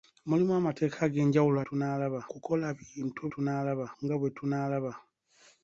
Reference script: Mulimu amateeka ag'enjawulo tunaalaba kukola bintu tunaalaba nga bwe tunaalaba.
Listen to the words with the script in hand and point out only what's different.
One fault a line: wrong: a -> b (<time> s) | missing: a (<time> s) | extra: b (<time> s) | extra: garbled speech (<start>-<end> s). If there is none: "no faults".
no faults